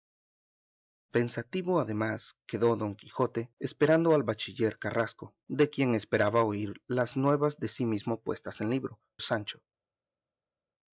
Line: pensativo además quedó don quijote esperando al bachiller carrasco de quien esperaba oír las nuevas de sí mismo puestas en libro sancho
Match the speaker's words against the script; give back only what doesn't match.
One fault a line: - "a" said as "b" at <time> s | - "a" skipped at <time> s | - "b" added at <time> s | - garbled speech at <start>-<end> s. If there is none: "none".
none